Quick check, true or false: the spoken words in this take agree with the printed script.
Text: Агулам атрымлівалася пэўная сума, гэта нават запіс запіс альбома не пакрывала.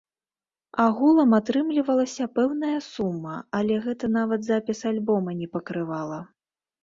false